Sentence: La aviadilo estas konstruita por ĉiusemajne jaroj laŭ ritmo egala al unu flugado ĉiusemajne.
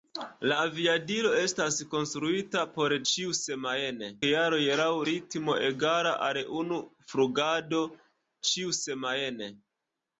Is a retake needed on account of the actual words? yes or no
no